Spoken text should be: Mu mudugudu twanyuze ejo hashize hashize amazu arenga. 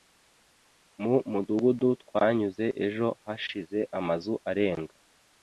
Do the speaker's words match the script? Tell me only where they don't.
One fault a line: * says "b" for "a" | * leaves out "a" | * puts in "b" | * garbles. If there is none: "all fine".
* leaves out "hashize"